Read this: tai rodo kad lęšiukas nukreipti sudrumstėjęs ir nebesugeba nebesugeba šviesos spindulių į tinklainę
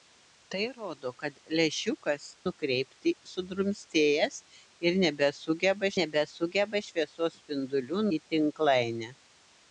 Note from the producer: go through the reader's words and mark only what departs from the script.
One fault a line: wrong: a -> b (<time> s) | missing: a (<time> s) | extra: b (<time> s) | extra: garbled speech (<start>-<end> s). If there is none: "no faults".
no faults